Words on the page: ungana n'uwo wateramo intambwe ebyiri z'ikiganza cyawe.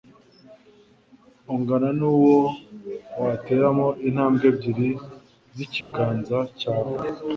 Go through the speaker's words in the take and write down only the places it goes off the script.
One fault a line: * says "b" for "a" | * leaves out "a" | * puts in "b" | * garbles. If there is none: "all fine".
all fine